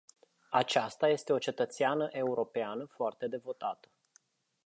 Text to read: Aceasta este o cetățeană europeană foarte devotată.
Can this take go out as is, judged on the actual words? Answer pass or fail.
pass